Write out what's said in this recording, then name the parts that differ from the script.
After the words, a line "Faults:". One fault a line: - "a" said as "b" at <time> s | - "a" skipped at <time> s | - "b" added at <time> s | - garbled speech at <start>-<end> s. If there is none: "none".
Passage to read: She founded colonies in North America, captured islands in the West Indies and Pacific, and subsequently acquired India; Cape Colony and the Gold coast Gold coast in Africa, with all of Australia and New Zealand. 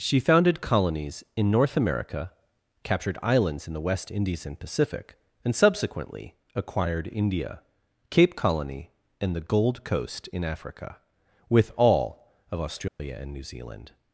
She founded colonies in North America, captured islands in the West Indies and Pacific, and subsequently acquired India; Cape Colony and the Gold coast in Africa, with all of Australia and New Zealand.
Faults:
- "Gold coast" skipped at 10.3 s